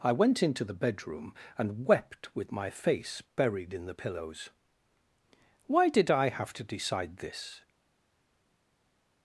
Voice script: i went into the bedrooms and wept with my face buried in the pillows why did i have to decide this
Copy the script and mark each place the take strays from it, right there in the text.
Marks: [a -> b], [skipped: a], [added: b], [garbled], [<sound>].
i went into the [bedrooms -> bedroom] and wept with my face buried in the pillows why did i have to decide this